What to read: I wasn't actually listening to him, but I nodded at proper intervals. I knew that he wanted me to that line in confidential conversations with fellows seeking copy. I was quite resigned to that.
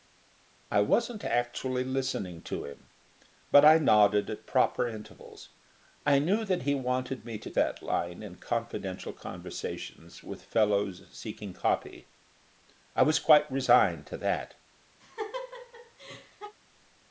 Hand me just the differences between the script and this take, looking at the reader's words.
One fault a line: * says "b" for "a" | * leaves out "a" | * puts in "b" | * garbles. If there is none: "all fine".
all fine